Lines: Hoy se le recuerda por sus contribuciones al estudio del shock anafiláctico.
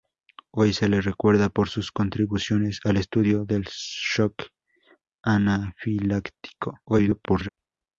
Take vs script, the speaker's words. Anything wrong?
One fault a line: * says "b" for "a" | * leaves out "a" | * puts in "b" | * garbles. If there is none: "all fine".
* garbles